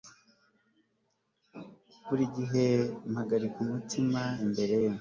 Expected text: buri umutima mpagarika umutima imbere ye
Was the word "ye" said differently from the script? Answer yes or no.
no